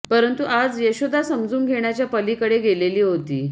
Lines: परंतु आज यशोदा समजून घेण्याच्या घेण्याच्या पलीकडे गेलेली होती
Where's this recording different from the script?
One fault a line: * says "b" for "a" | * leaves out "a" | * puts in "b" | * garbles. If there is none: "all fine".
* leaves out "घेण्याच्या"